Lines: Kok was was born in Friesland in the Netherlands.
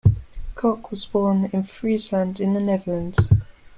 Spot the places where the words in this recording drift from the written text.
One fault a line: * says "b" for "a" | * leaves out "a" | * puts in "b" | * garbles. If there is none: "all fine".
* leaves out "was"